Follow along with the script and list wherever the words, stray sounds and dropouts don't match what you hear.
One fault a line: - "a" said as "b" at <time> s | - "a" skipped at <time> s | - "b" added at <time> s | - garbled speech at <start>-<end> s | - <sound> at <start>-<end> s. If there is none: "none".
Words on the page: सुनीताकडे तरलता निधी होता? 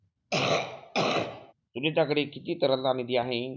- cough at 0.3-1.5 s
- "किती" added at 2.3 s
- "होता" said as "आहे" at 3.2 s